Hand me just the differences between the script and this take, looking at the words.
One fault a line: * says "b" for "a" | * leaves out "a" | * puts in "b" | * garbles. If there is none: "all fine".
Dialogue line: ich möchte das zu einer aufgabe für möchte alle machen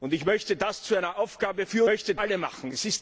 all fine